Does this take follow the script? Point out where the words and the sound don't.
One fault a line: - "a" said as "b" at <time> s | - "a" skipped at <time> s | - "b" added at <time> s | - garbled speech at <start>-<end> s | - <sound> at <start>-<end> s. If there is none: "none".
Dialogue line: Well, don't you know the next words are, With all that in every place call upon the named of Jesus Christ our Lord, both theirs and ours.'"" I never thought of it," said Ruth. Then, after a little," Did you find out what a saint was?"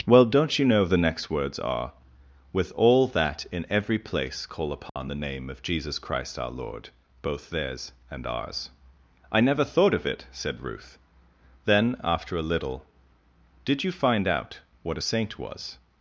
- dropout at 4.9-5.0 s
- "named" said as "name" at 5.1 s